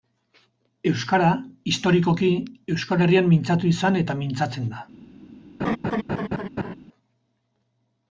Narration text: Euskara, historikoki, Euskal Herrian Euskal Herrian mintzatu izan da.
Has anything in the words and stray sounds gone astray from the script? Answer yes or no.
yes